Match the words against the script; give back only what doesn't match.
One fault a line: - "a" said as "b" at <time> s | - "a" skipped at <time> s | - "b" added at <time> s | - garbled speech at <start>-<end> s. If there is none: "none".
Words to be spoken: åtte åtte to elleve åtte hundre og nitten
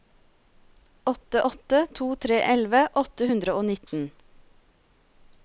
- "tre" added at 2.3 s